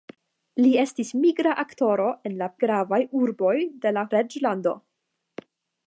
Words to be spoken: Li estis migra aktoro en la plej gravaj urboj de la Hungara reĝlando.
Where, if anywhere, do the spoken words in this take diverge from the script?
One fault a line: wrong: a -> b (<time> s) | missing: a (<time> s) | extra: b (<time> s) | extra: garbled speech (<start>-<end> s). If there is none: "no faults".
missing: plej (2.5 s)
missing: Hungara (4.1 s)